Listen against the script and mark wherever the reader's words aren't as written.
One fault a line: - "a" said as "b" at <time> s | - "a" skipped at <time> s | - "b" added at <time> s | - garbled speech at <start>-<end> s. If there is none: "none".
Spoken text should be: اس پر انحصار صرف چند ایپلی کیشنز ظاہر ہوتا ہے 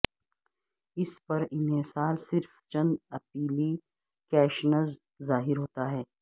none